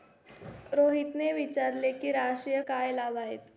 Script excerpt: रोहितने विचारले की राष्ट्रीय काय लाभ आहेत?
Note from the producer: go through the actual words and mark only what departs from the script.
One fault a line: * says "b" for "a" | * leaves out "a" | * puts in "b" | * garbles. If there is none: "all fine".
all fine